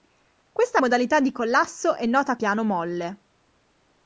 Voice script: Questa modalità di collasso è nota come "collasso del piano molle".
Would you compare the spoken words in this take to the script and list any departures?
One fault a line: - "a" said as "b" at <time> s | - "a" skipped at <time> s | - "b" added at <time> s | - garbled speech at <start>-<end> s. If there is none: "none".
- "come collasso del" skipped at 2.4 s